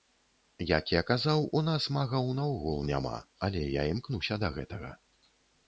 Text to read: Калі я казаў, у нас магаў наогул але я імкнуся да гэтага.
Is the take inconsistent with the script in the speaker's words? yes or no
yes